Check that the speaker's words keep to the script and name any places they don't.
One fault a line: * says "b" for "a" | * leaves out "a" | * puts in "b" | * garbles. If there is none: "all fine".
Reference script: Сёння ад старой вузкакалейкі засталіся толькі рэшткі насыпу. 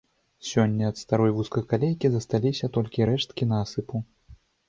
all fine